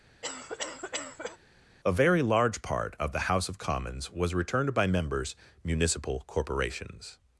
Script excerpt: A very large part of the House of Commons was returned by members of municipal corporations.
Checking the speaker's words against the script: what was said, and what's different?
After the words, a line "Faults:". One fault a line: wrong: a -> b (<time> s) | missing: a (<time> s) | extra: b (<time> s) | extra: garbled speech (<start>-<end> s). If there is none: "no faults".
A very large part of the House of Commons was returned by members municipal corporations.
Faults:
missing: of (5.3 s)